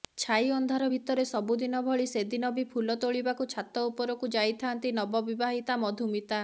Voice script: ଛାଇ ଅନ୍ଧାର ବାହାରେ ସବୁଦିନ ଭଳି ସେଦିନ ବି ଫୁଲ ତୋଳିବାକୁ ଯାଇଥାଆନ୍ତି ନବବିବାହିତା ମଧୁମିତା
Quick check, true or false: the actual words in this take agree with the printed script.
false